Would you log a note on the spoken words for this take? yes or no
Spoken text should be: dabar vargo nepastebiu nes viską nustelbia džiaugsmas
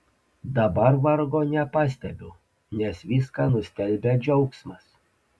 no